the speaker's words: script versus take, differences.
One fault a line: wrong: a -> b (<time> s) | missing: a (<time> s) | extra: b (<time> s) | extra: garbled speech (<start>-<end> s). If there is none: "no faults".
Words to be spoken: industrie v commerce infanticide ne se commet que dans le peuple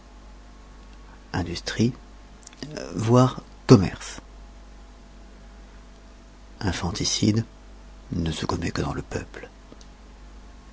no faults